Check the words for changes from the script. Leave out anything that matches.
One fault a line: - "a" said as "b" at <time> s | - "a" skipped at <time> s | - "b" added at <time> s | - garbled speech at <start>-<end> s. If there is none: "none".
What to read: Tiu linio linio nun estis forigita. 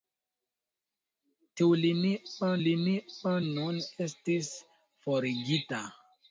none